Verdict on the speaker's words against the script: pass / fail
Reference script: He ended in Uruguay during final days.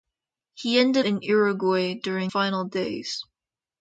pass